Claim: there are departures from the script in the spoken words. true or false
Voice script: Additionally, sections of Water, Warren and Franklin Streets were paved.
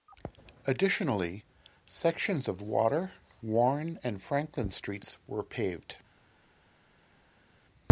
false